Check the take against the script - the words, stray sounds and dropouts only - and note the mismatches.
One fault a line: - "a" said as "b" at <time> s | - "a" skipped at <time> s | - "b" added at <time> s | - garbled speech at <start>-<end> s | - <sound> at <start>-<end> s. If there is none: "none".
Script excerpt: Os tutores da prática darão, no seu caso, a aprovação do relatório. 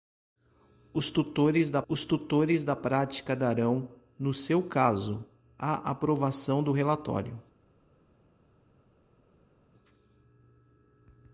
- "os tutores da" added at 1.9 s